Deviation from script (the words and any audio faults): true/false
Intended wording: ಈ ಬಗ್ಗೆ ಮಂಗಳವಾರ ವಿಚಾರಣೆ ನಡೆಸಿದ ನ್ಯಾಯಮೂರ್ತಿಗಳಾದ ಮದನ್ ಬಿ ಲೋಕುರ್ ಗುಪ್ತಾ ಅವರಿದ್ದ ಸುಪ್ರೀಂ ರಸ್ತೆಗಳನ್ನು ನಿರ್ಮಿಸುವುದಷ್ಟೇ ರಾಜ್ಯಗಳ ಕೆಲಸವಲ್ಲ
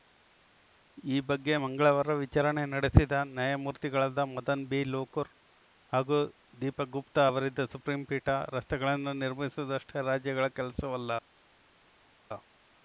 true